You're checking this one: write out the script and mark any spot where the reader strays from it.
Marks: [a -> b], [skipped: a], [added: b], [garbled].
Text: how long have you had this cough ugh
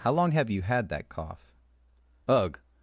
how long have you had [this -> that] cough ugh